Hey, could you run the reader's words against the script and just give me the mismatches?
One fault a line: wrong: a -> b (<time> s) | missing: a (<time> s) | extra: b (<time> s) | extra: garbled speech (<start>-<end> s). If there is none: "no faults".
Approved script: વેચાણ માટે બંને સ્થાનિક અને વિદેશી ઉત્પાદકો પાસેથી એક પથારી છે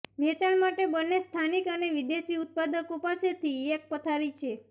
no faults